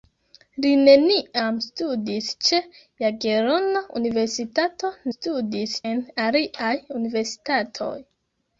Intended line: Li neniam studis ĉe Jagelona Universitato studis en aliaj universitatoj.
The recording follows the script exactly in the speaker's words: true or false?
true